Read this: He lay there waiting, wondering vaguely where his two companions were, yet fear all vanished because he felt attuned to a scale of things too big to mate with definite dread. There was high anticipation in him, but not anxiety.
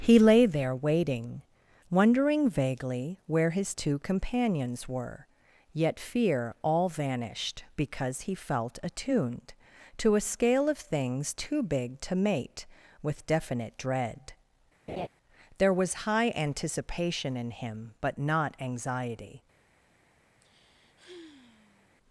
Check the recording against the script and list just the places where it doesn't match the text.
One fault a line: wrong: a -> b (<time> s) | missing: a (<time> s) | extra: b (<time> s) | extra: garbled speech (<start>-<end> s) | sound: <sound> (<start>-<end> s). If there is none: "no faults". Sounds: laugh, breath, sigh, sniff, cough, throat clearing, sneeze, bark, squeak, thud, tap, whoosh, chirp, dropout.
sound: laugh (14.9-15.1 s)
sound: sigh (20.4-21.9 s)